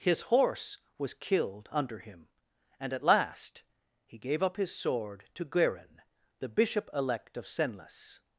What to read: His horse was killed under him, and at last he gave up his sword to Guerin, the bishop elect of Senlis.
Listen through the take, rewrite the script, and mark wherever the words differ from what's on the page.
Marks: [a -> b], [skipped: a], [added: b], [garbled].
His horse was killed under him, and at last he gave up his sword to Guerin, the bishop elect of Senlis.